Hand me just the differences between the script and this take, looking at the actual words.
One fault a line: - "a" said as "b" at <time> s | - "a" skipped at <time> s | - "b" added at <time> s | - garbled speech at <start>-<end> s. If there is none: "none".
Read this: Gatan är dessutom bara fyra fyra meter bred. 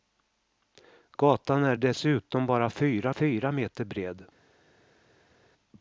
none